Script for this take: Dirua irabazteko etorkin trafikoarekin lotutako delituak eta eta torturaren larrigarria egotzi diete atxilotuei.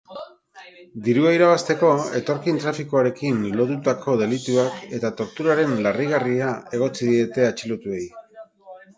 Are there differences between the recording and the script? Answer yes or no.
yes